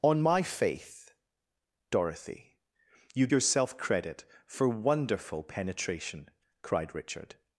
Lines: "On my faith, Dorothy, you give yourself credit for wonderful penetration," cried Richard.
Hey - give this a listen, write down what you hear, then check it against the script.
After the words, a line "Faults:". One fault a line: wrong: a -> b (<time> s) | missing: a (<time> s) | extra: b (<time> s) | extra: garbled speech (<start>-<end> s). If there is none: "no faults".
"On my faith, Dorothy, you yourself credit for wonderful penetration," cried Richard.
Faults:
missing: give (3.3 s)